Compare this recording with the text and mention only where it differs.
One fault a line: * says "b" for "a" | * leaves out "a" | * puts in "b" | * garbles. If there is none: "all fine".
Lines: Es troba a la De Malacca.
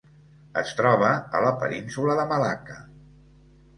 * puts in "Península"